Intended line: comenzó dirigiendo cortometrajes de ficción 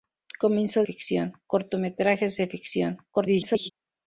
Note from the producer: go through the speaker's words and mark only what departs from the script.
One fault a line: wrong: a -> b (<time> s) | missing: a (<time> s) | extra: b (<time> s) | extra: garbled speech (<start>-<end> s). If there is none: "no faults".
wrong: dirigiendo -> ficción (0.8 s)
extra: garbled speech (3.1-3.7 s)